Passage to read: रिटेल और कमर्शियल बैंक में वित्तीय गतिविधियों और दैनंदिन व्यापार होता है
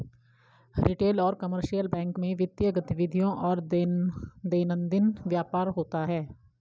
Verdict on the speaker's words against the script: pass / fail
pass